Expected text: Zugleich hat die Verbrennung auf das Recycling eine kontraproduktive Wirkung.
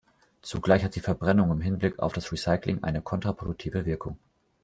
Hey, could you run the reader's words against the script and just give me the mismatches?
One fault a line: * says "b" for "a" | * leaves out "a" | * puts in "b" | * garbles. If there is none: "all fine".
* puts in "im Hinblick"